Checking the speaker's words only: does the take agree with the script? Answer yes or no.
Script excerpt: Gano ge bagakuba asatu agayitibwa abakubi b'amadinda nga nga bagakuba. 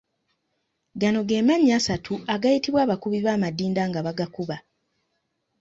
no